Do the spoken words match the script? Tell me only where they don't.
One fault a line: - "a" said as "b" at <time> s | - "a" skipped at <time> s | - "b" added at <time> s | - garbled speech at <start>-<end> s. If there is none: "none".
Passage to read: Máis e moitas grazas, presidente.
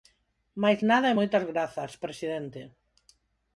- "nada" added at 0.9 s